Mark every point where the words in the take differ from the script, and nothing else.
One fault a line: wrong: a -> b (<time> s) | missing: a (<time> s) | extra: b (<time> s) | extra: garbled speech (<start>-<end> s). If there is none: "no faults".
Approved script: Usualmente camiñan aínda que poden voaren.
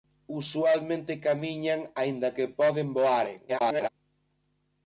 extra: garbled speech (3.5-3.9 s)